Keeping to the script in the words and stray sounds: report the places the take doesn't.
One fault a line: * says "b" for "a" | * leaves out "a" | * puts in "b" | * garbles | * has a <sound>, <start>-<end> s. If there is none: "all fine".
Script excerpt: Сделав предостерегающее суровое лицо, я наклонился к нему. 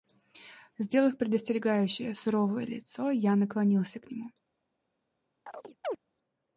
* has a chirp, 5.5-6.0 s